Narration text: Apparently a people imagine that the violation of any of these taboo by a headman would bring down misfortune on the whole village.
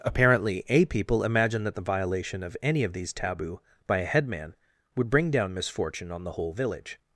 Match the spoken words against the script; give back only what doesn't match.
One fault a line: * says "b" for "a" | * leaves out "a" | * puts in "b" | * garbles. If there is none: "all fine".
all fine